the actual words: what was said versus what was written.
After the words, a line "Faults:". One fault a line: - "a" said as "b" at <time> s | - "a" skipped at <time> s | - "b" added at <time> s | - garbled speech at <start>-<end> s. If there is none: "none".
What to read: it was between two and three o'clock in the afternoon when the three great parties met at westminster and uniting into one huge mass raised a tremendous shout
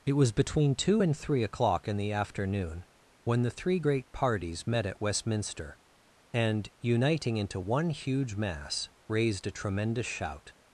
it was between two and three o'clock in the afternoon when the three great parties met at westminster and uniting into one huge mass raised a tremendous shout
Faults:
none